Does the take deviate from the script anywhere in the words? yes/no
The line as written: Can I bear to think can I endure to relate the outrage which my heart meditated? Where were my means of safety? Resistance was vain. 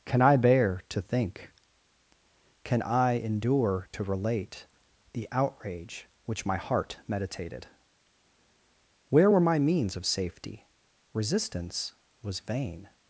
no